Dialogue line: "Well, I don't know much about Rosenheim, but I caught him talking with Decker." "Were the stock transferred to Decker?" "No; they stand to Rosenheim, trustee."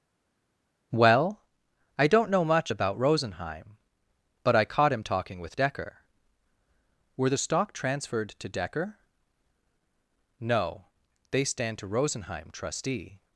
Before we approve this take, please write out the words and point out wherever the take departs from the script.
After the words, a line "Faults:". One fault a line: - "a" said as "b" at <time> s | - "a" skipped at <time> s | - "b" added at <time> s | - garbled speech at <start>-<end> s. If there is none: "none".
"Well, I don't know much about Rosenheim, but I caught him talking with Decker." "Were the stock transferred to Decker?" "No; they stand to Rosenheim, trustee."
Faults:
none